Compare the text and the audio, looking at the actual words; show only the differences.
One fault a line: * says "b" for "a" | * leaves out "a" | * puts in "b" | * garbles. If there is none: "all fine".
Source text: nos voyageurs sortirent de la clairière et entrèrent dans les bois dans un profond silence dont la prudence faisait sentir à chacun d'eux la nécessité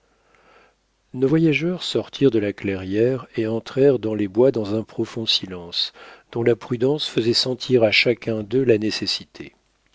all fine